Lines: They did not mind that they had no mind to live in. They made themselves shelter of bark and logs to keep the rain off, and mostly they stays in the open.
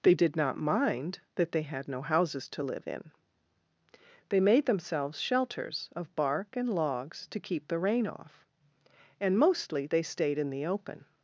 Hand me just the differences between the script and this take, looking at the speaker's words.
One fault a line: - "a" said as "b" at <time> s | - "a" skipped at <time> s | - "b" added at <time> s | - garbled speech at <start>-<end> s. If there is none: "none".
- "mind" said as "houses" at 2.0 s
- "shelter" said as "shelters" at 5.2 s
- "stays" said as "stayed" at 10.0 s